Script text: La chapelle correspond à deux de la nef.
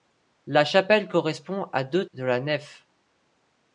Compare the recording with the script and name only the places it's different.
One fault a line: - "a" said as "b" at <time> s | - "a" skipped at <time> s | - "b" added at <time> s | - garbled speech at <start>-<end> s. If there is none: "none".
none